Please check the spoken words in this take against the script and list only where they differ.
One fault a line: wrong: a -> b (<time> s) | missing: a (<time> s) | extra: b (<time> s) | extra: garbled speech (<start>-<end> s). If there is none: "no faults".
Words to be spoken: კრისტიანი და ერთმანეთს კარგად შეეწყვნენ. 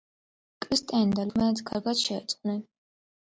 no faults